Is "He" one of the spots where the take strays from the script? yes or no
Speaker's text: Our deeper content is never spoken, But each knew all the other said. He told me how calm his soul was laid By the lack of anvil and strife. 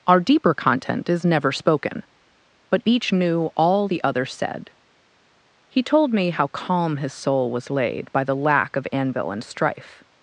no